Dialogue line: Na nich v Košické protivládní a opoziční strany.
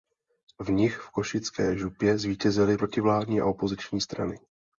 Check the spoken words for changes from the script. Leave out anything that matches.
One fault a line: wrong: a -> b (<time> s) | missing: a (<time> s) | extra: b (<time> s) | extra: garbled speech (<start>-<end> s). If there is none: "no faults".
wrong: Na -> V (0.6 s)
extra: župě zvítězily (1.8 s)